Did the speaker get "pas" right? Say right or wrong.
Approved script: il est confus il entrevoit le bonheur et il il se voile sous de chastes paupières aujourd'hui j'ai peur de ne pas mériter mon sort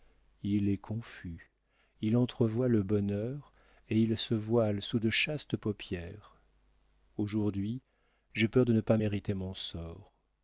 right